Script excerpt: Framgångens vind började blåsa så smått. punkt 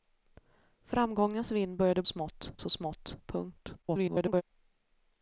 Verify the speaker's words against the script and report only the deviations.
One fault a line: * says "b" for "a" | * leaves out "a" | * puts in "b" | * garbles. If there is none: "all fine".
* says "smått" for "blåsa"
* garbles